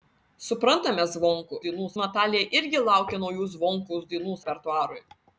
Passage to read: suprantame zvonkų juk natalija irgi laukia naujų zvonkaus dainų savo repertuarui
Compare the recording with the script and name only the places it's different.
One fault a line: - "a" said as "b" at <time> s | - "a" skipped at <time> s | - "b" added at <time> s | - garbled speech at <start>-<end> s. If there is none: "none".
- "juk" said as "dainų" at 1.7 s
- "savo" skipped at 4.4 s